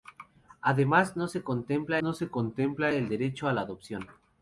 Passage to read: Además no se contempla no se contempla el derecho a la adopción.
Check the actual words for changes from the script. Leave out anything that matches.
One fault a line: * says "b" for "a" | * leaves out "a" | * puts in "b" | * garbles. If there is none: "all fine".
all fine